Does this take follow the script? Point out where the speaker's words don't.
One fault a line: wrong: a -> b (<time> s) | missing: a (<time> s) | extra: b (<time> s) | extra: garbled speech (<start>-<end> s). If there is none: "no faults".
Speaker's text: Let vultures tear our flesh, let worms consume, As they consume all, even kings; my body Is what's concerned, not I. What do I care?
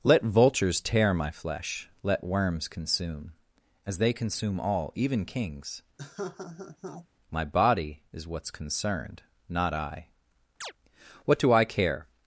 wrong: our -> my (1.1 s)